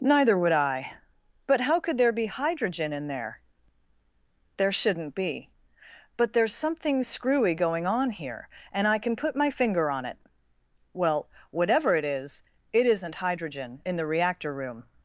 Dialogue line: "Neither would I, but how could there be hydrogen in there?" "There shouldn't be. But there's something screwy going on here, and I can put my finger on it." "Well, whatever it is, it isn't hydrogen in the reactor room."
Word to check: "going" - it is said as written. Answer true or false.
true